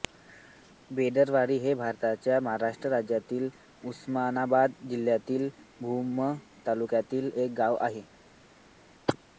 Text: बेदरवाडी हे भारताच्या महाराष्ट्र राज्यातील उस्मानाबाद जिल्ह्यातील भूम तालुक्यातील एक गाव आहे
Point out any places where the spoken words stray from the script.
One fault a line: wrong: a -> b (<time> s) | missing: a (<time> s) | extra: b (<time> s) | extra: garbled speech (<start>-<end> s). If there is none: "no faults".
no faults